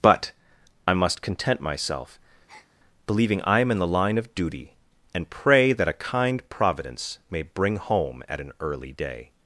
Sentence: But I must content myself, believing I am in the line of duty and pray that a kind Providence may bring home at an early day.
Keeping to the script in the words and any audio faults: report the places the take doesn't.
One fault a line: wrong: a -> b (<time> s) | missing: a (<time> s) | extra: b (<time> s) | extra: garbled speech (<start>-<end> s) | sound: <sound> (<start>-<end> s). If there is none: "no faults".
sound: breath (2.5-2.7 s)